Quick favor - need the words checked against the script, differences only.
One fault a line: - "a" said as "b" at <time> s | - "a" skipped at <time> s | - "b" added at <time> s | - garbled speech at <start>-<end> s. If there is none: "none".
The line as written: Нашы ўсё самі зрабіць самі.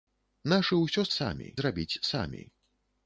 none